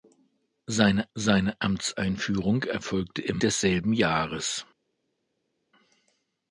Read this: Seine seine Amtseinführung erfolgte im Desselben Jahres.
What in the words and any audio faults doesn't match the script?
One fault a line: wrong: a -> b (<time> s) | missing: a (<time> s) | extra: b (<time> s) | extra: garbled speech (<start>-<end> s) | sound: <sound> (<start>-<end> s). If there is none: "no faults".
no faults